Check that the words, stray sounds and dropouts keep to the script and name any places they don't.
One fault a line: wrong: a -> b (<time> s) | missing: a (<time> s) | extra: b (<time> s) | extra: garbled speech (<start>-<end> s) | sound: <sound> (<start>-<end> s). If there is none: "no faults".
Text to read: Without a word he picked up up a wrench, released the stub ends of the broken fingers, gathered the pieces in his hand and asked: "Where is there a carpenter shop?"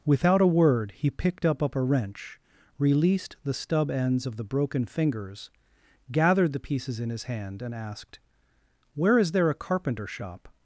no faults